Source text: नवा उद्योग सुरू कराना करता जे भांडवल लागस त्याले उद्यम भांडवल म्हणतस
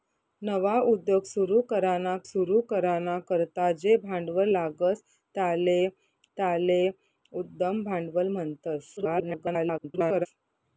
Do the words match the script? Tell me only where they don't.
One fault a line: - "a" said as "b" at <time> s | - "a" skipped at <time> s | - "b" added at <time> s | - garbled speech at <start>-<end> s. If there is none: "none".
- "सुरू कराना" added at 2.3 s
- "त्याले" added at 6.4 s
- garbled speech at 9.0-10.3 s